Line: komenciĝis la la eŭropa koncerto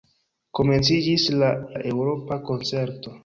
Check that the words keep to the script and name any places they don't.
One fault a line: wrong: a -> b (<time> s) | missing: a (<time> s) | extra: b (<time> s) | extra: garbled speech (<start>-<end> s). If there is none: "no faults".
no faults